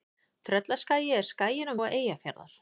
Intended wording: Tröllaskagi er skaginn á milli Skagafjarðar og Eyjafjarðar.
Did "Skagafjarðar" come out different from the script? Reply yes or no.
yes